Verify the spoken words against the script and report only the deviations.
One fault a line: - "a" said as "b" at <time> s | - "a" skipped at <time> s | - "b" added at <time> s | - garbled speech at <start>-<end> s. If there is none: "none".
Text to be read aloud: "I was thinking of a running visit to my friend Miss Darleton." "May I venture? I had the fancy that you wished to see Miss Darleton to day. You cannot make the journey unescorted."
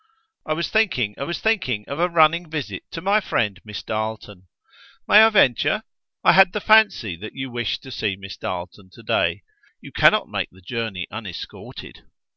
- "was thinking of" added at 1.2 s